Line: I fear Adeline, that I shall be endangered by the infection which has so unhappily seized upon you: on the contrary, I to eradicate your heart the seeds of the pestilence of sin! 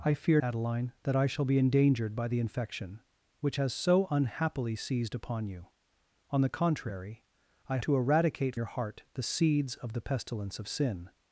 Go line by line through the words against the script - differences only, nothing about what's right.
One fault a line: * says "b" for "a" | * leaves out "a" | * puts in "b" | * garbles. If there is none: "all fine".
all fine